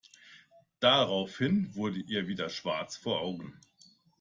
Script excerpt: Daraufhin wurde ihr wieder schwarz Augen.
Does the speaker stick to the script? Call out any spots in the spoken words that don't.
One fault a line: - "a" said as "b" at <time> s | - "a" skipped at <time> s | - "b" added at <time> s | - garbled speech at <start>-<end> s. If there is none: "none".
- "vor" added at 3.0 s